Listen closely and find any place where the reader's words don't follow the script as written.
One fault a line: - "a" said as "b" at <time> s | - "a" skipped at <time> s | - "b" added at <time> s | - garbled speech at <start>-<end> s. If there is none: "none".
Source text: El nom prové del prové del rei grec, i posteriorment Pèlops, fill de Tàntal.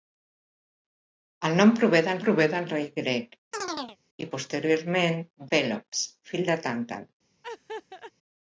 none